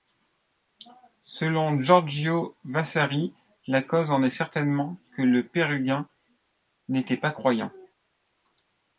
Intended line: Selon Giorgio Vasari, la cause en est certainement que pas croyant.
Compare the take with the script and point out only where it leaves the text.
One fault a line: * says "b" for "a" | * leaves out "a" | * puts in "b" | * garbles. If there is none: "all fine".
* puts in "le Pérugin n'était"